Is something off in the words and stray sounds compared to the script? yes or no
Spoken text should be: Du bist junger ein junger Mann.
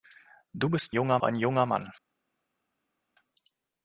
no